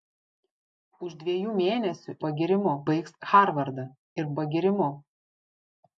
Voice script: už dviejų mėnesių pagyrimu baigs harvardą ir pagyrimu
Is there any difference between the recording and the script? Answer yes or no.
no